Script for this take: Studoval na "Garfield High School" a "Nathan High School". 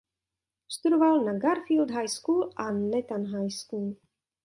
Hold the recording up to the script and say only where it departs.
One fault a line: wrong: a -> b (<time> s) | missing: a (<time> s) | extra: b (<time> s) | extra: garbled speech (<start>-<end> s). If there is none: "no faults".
no faults